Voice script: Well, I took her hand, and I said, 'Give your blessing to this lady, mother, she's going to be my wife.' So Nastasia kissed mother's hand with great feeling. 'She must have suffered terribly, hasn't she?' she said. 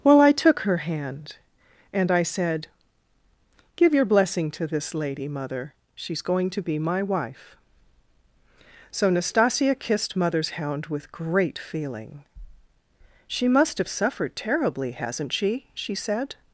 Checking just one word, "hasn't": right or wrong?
right